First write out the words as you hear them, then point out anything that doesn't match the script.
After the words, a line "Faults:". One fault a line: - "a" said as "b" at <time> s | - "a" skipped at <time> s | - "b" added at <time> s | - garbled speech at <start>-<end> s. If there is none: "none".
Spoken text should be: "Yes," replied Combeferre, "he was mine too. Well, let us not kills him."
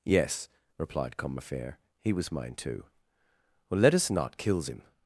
"Yes," replied Combeferre, "he was mine too. Well, let us not kills him."
Faults:
none